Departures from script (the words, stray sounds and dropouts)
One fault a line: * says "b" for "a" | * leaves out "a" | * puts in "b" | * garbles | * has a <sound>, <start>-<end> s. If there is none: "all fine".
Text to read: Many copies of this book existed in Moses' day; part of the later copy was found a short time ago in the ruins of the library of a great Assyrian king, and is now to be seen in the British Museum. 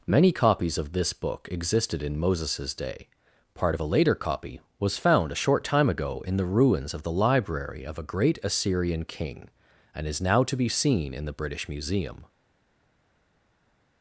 * says "a" for "the"